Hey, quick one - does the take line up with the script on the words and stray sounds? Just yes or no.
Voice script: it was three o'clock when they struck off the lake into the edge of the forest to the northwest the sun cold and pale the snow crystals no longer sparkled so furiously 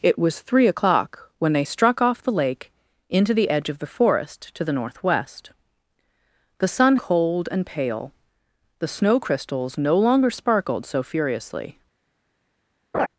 no